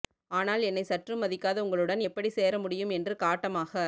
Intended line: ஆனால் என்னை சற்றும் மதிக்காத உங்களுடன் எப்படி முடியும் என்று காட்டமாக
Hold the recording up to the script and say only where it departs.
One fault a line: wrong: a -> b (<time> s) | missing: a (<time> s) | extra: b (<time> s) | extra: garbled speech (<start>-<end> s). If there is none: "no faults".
extra: சேர (2.3 s)